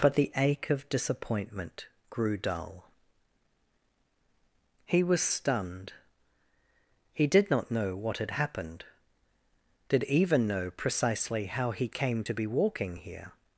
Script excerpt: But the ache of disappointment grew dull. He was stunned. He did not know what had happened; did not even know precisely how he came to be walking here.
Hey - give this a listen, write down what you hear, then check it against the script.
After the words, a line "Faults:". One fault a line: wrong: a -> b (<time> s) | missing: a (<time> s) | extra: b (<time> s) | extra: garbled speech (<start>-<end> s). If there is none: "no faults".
But the ache of disappointment grew dull. He was stunned. He did not know what had happened; did even know precisely how he came to be walking here.
Faults:
missing: not (10.0 s)